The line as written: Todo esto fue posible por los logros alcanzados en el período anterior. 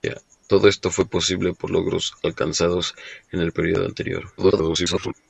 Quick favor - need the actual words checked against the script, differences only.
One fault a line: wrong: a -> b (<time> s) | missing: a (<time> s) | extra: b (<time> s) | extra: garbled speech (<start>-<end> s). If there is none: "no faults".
missing: los (1.7 s)
extra: garbled speech (4.4-5.1 s)